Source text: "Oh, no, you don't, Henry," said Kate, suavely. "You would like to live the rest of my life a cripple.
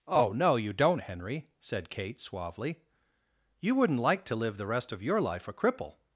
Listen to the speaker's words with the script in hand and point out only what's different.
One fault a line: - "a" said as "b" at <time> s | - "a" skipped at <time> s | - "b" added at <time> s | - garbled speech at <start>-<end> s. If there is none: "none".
- "would" said as "wouldn't" at 3.8 s
- "my" said as "your" at 5.0 s